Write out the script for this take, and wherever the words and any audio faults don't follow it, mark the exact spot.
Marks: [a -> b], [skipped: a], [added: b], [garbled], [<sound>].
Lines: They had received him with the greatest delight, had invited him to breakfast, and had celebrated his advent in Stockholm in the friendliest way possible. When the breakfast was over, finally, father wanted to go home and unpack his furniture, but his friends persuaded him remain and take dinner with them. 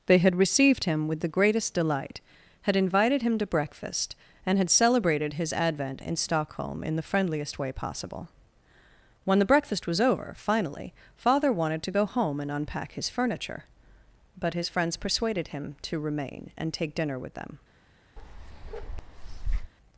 They had received him with the greatest delight, had invited him to breakfast, and had celebrated his advent in Stockholm in the friendliest way possible. When the breakfast was over, finally, father wanted to go home and unpack his furniture, but his friends persuaded him [added: to] remain and take dinner with them. [bark]